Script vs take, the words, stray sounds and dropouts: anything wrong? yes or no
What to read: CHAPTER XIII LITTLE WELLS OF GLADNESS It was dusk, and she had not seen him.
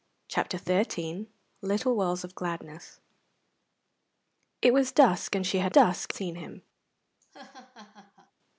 yes